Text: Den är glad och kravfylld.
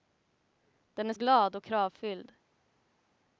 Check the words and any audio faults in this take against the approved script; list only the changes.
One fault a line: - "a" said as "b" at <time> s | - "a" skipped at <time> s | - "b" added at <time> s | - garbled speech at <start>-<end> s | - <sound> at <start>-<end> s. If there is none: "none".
none